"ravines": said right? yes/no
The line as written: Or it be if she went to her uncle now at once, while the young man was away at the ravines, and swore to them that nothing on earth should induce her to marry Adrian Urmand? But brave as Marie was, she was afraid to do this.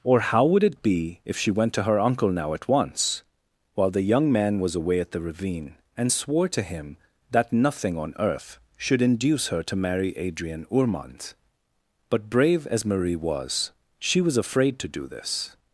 no